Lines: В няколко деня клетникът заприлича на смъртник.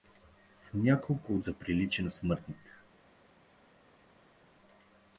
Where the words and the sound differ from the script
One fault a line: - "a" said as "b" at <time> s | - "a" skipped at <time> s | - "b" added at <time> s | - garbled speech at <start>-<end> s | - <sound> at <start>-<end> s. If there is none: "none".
- "деня клетникът" skipped at 1.4 s